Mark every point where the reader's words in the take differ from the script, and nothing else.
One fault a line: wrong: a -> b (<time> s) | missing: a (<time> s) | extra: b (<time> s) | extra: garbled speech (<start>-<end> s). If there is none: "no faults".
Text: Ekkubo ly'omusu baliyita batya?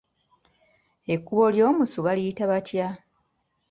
no faults